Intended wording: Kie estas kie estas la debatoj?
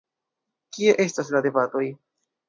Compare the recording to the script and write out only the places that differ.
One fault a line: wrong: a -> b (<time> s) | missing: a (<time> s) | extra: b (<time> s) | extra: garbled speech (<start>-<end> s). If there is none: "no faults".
missing: kie estas (1.3 s)